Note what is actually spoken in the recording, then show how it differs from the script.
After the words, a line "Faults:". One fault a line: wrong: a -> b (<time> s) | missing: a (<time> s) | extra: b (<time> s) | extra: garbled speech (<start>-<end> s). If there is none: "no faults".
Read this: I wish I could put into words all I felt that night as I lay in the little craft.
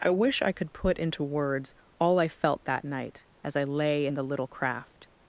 I wish I could put into words all I felt that night as I lay in the little craft.
Faults:
no faults